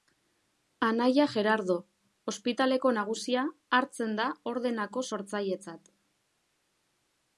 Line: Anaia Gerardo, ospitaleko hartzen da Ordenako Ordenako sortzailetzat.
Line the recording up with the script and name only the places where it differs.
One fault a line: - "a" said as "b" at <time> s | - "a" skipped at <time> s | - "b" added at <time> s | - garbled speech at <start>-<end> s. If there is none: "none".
- "nagusia" added at 3.0 s
- "Ordenako" skipped at 5.0 s